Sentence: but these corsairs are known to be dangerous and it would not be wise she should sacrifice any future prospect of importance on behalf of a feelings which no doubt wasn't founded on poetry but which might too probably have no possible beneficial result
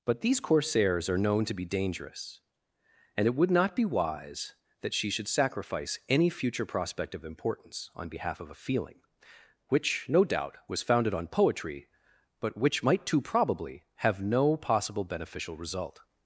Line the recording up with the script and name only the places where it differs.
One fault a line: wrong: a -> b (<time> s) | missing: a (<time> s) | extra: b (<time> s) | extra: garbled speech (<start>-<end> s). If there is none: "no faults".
extra: that (4.8 s)
wrong: feelings -> feeling (8.6 s)
wrong: wasn't -> was (10.7 s)